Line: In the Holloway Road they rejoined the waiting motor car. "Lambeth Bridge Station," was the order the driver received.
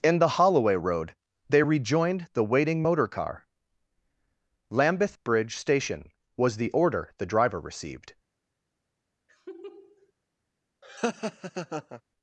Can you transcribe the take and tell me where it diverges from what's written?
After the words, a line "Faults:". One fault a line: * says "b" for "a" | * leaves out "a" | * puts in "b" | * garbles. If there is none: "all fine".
In the Holloway Road they rejoined the waiting motor car. "Lambeth Bridge Station," was the order the driver received.
Faults:
all fine